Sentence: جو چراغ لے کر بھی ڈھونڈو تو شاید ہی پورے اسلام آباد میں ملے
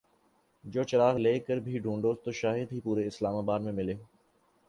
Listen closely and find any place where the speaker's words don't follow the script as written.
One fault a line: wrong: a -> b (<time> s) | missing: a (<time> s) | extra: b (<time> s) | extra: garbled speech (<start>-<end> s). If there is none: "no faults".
no faults